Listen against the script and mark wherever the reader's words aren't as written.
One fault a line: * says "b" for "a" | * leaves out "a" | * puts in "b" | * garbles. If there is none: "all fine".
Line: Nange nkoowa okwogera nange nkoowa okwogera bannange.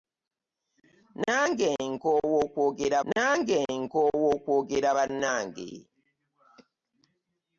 all fine